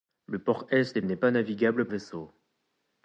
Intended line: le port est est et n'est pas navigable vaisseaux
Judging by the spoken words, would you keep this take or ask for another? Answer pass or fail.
pass